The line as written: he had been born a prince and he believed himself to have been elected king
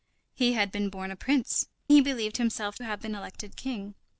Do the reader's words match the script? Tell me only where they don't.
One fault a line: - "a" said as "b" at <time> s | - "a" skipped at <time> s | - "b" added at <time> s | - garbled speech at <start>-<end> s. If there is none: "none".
- "and" skipped at 1.7 s
- "to" skipped at 2.8 s